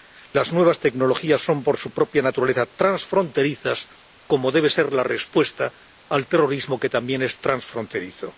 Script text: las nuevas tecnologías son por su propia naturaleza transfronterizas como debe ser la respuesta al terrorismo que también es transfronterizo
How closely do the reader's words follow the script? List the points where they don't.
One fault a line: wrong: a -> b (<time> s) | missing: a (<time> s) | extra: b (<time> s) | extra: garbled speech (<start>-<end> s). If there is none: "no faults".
no faults